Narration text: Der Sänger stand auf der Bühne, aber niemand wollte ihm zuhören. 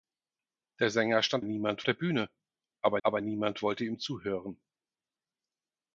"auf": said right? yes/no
no